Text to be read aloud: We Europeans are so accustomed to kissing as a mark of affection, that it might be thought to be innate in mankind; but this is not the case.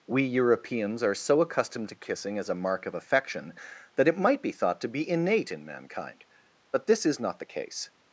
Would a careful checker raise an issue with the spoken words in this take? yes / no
no